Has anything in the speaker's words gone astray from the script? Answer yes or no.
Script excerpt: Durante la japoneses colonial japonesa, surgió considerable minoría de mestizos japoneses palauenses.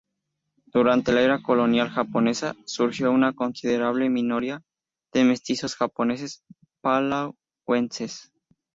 yes